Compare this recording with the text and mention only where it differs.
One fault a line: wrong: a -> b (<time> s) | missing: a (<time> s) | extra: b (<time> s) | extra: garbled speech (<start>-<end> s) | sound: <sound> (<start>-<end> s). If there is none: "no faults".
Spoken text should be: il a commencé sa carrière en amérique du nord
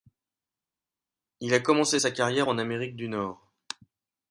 no faults